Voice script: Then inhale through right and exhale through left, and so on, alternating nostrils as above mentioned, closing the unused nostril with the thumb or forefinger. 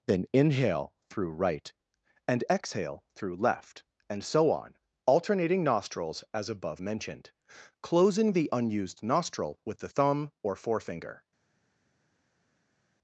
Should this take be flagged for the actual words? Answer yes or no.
no